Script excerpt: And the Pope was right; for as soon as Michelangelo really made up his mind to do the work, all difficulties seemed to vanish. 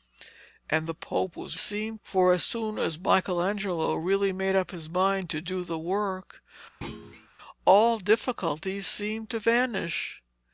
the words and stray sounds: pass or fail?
fail